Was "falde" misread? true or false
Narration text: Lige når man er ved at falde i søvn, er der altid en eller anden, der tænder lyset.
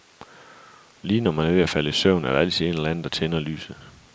false